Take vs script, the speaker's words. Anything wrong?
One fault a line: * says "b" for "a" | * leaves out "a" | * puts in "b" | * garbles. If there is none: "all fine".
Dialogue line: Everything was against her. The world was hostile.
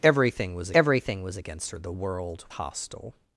* puts in "everything was"
* leaves out "was"